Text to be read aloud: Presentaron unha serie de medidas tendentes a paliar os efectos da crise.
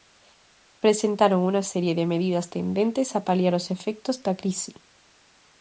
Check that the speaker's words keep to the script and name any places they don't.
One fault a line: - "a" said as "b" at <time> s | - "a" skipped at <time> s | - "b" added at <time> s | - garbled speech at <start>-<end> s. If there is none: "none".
none